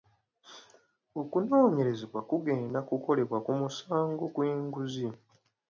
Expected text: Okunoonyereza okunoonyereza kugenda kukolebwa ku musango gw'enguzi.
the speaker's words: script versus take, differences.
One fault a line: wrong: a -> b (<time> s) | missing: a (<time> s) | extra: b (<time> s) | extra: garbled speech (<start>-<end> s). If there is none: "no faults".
missing: okunoonyereza (2.0 s)